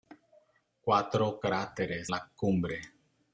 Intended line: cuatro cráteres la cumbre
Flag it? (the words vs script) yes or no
no